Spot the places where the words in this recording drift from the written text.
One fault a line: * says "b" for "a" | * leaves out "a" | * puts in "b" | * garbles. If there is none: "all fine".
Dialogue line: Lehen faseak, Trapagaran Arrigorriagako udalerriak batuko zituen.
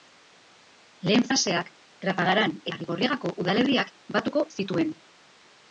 all fine